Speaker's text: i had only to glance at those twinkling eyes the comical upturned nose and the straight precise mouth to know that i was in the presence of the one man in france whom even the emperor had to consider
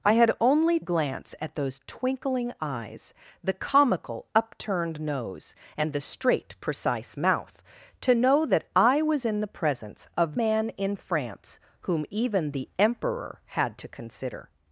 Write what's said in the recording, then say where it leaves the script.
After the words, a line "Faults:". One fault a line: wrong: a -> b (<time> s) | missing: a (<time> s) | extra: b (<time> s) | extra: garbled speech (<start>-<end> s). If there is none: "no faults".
i had only glance at those twinkling eyes the comical upturned nose and the straight precise mouth to know that i was in the presence of man in france whom even the emperor had to consider
Faults:
missing: to (0.8 s)
missing: the one (10.4 s)